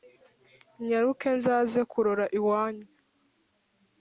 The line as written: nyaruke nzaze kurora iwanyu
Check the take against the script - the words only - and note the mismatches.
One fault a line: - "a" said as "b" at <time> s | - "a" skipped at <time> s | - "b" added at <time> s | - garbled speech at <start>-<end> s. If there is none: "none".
none